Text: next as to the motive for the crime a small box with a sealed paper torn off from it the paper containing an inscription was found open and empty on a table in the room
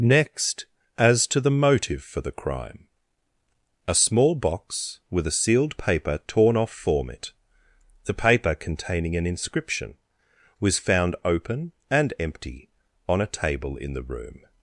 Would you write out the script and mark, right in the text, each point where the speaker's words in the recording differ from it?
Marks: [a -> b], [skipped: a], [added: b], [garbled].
next as to the motive for the crime a small box with a sealed paper torn off [from -> form] it the paper containing an inscription was found open and empty on a table in the room